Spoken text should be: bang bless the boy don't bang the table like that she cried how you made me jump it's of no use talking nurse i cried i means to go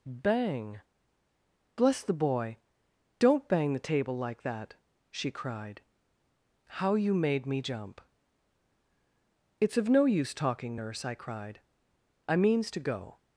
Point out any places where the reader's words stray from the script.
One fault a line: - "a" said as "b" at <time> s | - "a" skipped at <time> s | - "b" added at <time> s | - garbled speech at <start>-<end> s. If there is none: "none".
none